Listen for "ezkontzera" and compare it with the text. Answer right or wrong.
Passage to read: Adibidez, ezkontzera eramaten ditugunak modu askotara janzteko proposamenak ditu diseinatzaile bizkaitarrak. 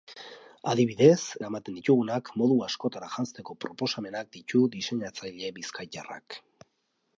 wrong